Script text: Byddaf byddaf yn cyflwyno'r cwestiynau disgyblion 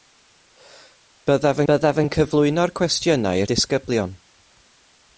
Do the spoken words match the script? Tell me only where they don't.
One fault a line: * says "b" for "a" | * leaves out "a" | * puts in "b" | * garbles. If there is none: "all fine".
all fine